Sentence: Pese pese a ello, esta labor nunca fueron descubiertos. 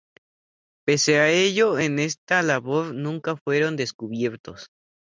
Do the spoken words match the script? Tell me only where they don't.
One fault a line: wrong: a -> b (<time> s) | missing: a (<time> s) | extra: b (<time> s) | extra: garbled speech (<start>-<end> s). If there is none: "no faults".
missing: pese (1.2 s)
extra: en (1.8 s)